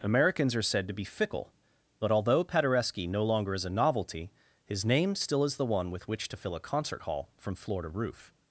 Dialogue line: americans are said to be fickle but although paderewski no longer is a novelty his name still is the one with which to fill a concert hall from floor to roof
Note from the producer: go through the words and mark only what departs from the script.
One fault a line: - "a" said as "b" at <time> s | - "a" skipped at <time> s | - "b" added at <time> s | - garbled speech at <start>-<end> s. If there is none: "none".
none